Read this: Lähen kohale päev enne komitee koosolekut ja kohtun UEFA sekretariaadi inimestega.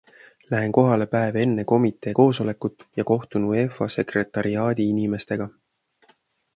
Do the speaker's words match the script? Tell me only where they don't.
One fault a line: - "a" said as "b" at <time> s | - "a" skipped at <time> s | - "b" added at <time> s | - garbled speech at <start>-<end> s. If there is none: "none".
none